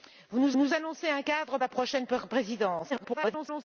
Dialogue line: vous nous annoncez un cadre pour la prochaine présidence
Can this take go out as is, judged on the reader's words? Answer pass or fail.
fail